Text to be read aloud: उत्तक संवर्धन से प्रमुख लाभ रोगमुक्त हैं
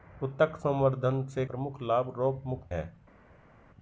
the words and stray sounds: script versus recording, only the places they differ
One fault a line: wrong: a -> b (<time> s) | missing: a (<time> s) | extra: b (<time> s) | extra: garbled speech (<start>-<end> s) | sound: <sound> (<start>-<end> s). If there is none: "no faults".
no faults